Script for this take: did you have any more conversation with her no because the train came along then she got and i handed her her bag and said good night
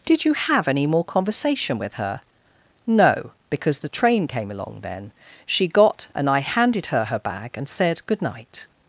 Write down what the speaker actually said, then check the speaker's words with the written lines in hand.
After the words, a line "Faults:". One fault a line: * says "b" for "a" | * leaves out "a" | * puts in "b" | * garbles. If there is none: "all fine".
did you have any more conversation with her no because the train came along then she got and i handed her her bag and said good night
Faults:
all fine